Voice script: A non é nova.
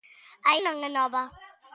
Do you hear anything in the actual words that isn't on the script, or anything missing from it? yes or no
no